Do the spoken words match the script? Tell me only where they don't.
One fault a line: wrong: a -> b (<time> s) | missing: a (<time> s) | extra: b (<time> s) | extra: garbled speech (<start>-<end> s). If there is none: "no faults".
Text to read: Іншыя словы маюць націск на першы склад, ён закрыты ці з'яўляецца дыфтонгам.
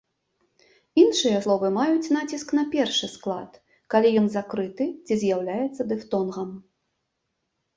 extra: калі (4.0 s)